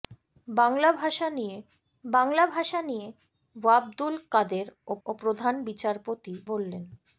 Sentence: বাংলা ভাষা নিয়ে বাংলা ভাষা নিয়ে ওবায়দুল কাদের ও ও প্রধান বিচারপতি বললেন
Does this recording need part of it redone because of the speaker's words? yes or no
no